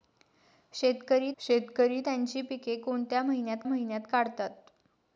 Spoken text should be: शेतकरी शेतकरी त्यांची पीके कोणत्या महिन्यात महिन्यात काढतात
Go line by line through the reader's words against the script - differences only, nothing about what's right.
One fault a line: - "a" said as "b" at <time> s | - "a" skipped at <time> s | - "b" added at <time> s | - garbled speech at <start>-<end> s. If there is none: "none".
none